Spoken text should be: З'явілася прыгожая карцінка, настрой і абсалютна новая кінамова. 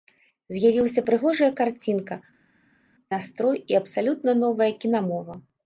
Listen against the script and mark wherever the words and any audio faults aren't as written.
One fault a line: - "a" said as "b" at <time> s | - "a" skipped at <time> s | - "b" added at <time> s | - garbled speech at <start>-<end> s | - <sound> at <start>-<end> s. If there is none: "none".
none